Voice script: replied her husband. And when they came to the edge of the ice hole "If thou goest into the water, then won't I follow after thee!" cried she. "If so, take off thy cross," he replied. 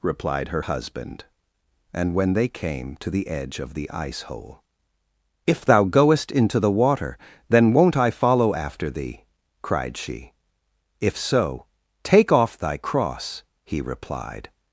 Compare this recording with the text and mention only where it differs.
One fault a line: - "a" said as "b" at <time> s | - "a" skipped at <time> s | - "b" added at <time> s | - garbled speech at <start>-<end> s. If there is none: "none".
none